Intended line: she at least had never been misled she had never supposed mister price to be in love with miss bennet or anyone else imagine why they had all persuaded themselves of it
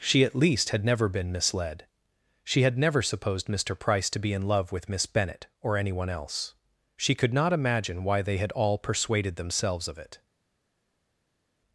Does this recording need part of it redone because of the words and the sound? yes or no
yes